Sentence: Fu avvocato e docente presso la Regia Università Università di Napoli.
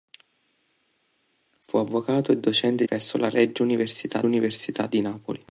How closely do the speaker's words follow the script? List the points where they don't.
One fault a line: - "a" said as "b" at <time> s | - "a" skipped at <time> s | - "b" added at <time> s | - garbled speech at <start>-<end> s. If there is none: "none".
none